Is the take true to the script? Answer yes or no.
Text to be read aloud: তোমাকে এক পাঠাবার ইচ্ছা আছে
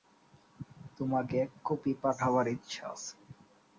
no